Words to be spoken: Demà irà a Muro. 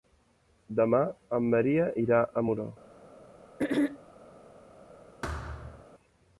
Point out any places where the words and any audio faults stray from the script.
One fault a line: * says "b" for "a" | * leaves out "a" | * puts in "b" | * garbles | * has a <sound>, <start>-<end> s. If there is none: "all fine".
* puts in "en Maria"
* has a throat clearing, 3.6-4.0 s
* has a thud, 5.2-5.9 s